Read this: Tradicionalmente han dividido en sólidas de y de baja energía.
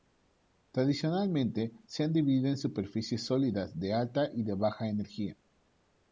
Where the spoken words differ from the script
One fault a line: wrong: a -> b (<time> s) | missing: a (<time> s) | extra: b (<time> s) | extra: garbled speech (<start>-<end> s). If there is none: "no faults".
extra: se (1.9 s)
extra: superficies (2.6 s)
extra: alta (3.9 s)